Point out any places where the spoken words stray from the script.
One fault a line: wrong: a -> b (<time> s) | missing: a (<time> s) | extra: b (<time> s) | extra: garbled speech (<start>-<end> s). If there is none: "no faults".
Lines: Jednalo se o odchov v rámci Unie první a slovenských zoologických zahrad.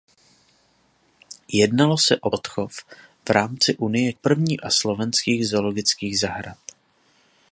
no faults